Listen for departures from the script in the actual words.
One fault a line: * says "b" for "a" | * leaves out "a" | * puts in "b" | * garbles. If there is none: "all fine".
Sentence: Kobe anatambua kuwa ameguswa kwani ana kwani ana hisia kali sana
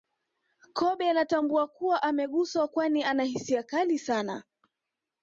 * leaves out "kwani ana"